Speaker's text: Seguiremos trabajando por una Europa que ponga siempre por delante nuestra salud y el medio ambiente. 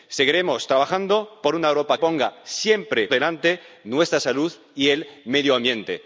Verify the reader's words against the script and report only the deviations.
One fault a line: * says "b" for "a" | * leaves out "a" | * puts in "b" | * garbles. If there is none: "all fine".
* leaves out "que"
* leaves out "por"